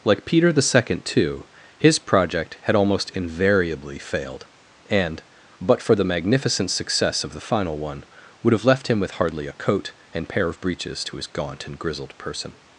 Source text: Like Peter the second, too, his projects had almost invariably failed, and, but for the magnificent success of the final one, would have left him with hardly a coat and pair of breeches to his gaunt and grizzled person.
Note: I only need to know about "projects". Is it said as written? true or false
false